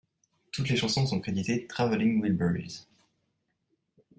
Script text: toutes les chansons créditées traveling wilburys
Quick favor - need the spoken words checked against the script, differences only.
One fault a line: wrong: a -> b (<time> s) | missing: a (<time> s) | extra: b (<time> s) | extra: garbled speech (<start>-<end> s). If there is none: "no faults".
extra: sont (1.0 s)